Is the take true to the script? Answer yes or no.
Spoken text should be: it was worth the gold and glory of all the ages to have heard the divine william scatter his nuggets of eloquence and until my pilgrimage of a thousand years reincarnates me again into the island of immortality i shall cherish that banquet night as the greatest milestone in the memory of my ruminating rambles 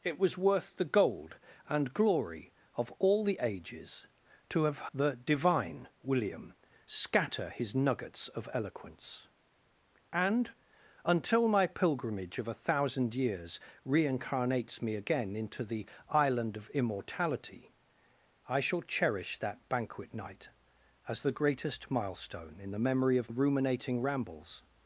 no